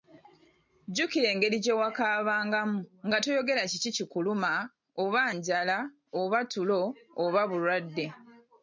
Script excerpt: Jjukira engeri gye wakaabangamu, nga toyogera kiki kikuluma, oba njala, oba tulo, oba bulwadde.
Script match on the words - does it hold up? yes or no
yes